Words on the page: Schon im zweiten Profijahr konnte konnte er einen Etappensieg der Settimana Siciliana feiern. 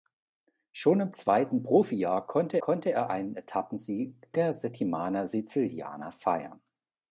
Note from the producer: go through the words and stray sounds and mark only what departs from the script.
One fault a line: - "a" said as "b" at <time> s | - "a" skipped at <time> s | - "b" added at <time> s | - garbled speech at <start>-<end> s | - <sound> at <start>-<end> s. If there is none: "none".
none